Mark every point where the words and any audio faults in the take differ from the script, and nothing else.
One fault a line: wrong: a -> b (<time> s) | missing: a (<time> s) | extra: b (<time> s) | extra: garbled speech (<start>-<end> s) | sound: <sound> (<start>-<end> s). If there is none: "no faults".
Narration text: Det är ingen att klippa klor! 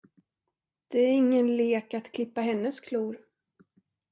extra: lek (1.6 s)
extra: hennes (2.4 s)